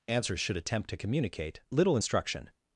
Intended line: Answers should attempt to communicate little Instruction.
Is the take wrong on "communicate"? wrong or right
right